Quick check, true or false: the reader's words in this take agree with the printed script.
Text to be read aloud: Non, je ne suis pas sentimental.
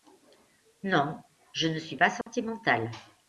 true